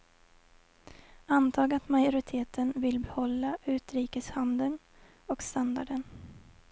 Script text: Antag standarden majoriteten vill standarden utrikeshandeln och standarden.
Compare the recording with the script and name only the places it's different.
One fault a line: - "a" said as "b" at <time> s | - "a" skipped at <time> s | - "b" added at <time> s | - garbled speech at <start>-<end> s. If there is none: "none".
- "standarden" said as "att" at 1.7 s
- "standarden" said as "behålla" at 3.0 s